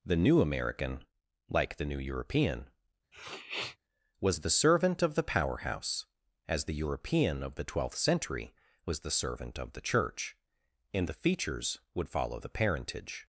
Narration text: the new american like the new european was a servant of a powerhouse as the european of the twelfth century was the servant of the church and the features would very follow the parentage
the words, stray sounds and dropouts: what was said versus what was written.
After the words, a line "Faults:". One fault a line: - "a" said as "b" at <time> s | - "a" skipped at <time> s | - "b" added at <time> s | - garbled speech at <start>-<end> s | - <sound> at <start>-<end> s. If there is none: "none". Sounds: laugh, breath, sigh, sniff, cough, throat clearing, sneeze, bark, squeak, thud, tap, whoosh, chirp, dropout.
the new american like the new european was the servant of the powerhouse as the european of the twelfth century was the servant of the church and the features would follow the parentage
Faults:
- sniff at 3.1-3.8 s
- "a" said as "the" at 4.4 s
- "a" said as "the" at 5.1 s
- "very" skipped at 12.1 s